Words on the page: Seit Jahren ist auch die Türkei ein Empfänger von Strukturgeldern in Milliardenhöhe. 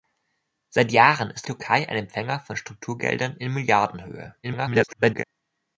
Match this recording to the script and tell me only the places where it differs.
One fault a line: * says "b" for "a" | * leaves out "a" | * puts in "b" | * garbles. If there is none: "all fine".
* leaves out "auch die"
* garbles